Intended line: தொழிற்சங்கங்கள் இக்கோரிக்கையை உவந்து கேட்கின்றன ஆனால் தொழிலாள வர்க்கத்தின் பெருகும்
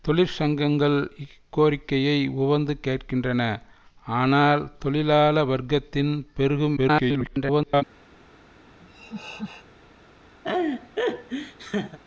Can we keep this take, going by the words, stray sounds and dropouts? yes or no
no